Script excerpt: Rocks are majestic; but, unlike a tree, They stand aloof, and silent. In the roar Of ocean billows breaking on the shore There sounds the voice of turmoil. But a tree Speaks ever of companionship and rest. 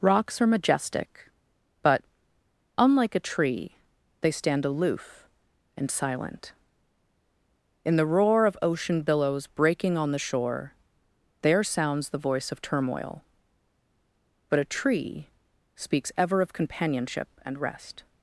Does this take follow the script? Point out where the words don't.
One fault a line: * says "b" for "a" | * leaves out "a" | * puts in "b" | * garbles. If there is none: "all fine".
all fine